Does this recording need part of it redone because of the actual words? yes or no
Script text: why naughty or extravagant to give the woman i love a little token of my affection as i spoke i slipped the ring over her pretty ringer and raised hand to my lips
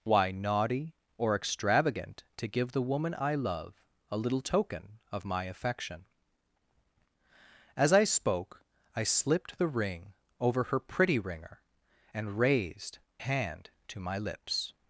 no